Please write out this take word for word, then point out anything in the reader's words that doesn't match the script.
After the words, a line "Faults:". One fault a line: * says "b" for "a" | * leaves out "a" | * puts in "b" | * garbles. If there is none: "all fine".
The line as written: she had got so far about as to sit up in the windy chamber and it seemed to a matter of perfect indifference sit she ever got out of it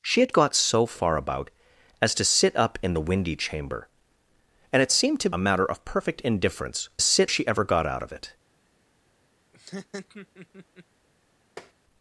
she had got so far about as to sit up in the windy chamber and it seemed to a matter of perfect indifference sit she ever got out of it
Faults:
all fine